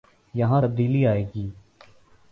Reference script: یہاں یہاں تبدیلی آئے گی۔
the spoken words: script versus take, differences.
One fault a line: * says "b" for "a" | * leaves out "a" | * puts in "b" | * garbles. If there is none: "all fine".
* leaves out "یہاں"